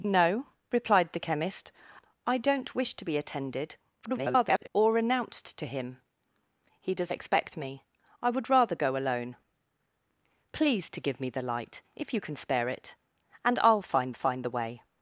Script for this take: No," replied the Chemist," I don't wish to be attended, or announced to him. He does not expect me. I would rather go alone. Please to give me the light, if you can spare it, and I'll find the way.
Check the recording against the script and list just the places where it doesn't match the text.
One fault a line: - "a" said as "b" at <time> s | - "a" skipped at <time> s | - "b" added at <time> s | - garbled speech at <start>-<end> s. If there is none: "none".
- garbled speech at 4.0-4.7 s
- "not" skipped at 7.1 s
- "find" added at 14.1 s